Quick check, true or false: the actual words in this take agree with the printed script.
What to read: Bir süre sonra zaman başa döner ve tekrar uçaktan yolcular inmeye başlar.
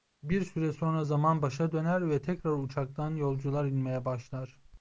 true